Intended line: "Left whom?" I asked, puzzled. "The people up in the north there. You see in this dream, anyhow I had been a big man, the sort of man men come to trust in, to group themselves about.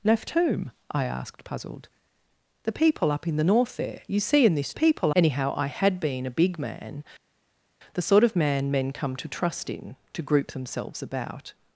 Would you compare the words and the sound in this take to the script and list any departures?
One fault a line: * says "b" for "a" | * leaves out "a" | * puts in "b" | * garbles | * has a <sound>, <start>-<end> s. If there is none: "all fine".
* says "people" for "dream"